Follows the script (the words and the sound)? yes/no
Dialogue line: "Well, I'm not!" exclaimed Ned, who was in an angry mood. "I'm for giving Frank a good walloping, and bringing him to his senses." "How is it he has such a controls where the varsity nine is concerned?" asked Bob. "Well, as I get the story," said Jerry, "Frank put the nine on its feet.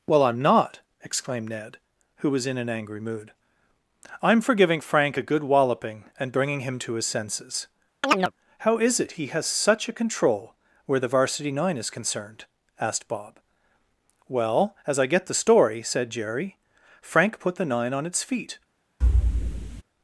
no